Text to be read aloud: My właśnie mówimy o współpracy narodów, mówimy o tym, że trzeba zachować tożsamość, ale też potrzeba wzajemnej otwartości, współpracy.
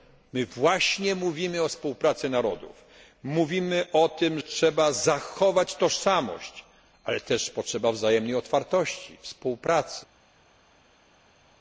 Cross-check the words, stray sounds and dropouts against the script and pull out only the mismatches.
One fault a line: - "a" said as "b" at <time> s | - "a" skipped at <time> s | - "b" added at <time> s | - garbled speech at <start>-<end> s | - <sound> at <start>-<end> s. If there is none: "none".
- "że" skipped at 4.4 s